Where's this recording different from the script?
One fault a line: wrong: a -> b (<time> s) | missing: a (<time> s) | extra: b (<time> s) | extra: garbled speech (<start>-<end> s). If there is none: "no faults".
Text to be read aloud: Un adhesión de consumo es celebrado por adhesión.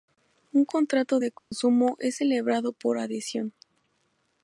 wrong: adhesión -> contrato (0.7 s)